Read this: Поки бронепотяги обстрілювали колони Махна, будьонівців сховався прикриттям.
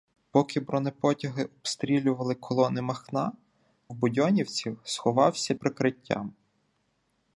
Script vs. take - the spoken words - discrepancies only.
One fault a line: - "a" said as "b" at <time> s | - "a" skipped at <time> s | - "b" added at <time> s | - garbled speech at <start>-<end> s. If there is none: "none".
none